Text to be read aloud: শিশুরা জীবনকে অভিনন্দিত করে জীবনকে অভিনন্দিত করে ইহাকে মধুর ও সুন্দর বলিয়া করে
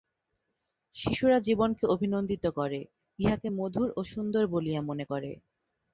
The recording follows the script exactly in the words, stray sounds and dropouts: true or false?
false